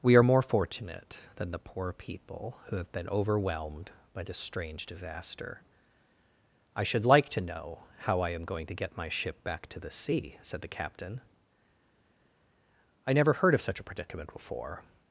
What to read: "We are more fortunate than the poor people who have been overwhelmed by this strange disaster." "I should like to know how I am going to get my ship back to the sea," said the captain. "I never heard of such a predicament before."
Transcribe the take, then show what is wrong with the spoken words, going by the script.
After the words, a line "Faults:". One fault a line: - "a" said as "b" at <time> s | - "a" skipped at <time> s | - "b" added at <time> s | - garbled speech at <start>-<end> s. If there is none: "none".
"We are more fortunate than the poor people who have been overwhelmed by this strange disaster." "I should like to know how I am going to get my ship back to the sea," said the captain. "I never heard of such a predicament before."
Faults:
none